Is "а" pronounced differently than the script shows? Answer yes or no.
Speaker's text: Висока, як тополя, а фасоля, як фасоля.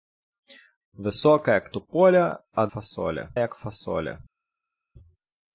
no